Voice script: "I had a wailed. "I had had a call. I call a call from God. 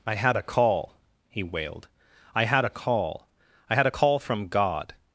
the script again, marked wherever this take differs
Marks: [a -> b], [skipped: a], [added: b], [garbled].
"I had a [added: call he] wailed. "I had [skipped: had] a call. I [call -> had] a call from God.